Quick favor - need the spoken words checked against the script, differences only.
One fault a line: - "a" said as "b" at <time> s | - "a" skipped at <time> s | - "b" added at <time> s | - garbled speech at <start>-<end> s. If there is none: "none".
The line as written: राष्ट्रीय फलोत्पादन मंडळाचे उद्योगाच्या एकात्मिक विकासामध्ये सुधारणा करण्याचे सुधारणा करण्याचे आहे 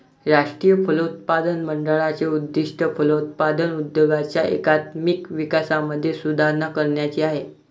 - "उद्दिष्ट फलोत्पादन" added at 2.3 s
- "सुधारणा करण्याचे" skipped at 7.2 s